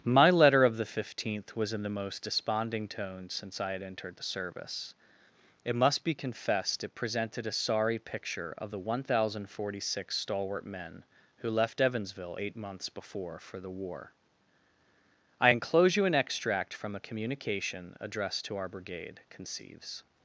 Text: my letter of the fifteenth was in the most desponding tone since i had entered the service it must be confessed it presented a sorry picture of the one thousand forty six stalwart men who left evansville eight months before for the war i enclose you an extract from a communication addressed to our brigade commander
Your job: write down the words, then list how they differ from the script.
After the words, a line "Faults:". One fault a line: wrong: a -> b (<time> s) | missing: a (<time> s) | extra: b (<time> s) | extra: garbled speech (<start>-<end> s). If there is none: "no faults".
my letter of the fifteenth was in the most desponding tone since i had entered the service it must be confessed it presented a sorry picture of the one thousand forty six stalwart men who left evansville eight months before for the war i enclose you an extract from a communication addressed to our brigade conceives
Faults:
wrong: commander -> conceives (19.3 s)